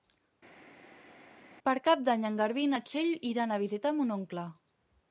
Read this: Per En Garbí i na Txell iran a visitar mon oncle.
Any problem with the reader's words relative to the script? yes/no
yes